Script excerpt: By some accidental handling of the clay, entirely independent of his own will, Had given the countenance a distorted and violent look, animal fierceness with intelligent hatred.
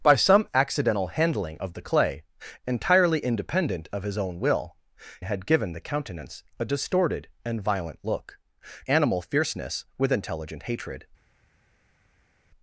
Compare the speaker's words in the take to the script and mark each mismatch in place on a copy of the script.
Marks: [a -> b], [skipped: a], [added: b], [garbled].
By some accidental handling of the clay, entirely independent of his own will, Had given the countenance a distorted and violent look, animal fierceness with intelligent hatred.